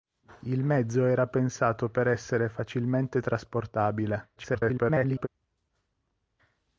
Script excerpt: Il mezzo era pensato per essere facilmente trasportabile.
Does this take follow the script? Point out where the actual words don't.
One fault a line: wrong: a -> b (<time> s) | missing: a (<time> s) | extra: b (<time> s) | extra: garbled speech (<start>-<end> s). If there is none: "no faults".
extra: garbled speech (4.4-5.3 s)